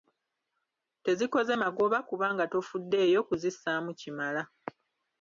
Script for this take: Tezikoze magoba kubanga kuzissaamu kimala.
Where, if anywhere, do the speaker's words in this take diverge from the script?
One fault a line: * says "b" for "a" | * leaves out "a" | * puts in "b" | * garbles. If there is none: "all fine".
* puts in "tofuddeeyo"